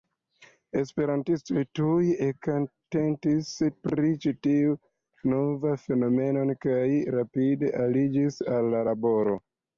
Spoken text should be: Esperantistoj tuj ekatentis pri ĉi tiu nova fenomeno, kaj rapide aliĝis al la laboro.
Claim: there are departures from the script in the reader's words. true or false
false